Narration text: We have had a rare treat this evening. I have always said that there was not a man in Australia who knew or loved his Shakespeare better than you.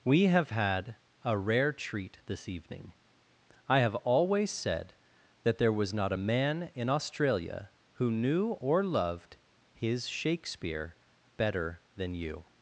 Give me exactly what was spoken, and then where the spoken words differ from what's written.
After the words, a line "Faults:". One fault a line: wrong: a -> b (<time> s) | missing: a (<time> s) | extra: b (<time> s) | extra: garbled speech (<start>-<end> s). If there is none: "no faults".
We have had a rare treat this evening. I have always said that there was not a man in Australia who knew or loved his Shakespeare better than you.
Faults:
no faults